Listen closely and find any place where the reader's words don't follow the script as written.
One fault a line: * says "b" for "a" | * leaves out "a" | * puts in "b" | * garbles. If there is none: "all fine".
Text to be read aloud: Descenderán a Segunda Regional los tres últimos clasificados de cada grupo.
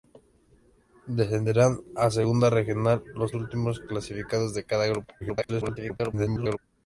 * leaves out "tres"
* garbles